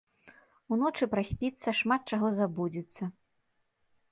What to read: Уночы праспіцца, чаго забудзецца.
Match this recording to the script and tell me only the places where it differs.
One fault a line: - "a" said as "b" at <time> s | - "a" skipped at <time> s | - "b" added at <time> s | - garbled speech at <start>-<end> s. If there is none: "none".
- "шмат" added at 1.8 s